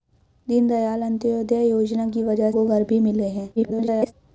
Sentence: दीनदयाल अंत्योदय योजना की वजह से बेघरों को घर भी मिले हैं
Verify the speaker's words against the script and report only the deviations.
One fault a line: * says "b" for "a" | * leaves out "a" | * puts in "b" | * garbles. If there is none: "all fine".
* leaves out "से बेघरों"
* garbles